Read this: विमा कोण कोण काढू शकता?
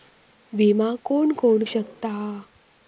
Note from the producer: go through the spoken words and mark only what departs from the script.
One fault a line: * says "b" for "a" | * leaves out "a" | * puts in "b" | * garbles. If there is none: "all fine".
* leaves out "काढू"